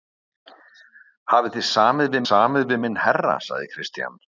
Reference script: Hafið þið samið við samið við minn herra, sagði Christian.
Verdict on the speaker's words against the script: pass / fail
pass